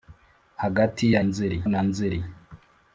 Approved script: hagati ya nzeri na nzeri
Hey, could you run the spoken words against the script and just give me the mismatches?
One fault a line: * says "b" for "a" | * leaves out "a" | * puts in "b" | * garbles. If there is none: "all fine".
all fine